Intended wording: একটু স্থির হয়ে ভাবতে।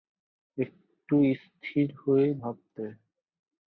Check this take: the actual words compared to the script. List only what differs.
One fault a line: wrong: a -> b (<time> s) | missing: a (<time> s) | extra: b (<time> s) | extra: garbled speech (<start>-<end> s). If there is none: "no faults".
no faults